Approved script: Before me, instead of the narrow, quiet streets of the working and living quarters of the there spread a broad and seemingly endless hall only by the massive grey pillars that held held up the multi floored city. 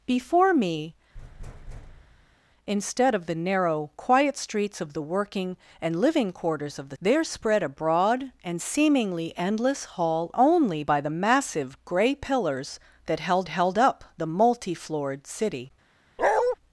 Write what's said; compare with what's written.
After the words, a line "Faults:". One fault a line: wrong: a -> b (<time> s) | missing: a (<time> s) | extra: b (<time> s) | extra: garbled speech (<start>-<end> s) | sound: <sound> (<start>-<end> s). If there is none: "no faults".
Before me, instead of the narrow, quiet streets of the working and living quarters of the there spread a broad and seemingly endless hall only by the massive grey pillars that held held up the multi floored city.
Faults:
sound: thud (1.1-2.4 s)
sound: bark (16.2-16.6 s)